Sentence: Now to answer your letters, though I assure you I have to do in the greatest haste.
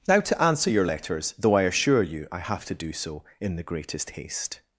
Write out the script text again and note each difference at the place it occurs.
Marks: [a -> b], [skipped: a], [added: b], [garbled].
Now to answer your letters, though I assure you I have to do [added: so] in the greatest haste.